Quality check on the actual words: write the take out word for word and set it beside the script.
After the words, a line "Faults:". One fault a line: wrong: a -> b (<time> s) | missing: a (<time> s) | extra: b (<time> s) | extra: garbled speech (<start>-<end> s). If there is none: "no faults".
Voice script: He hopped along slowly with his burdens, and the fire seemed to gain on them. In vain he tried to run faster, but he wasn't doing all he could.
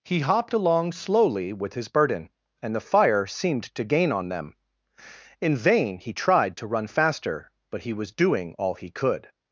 He hopped along slowly with his burden, and the fire seemed to gain on them. In vain he tried to run faster, but he was doing all he could.
Faults:
wrong: burdens -> burden (1.9 s)
wrong: wasn't -> was (7.9 s)